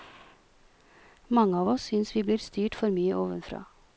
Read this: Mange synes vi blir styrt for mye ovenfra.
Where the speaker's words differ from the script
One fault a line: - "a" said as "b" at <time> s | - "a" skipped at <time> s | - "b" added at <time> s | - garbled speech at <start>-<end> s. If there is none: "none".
- "av oss" added at 1.6 s